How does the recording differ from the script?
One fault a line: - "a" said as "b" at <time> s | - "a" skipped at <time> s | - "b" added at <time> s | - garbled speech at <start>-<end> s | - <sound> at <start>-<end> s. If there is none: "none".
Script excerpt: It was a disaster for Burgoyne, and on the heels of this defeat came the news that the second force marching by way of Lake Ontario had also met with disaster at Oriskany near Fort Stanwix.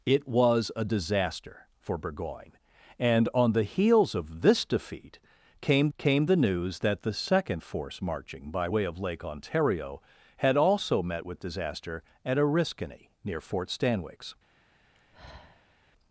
- "came" added at 6.0 s
- sigh at 14.9-15.8 s